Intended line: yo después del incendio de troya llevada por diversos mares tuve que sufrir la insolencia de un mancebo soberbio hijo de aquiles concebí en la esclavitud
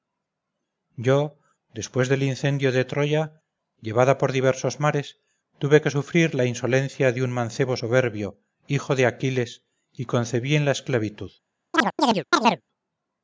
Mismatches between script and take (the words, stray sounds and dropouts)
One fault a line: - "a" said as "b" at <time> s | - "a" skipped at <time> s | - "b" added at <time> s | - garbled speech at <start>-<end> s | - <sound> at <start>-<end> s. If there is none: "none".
- "y" added at 9.9 s
- chirp at 11.7-12.6 s